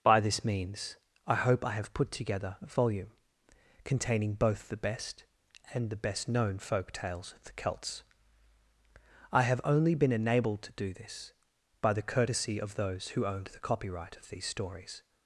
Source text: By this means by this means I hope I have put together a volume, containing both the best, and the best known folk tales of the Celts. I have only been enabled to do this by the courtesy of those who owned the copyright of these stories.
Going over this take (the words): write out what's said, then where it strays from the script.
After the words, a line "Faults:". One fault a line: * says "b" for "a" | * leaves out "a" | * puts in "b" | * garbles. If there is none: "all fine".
By this means I hope I have put together a volume, containing both the best, and the best known folk tales of the Celts. I have only been enabled to do this by the courtesy of those who owned the copyright of these stories.
Faults:
* leaves out "by this means"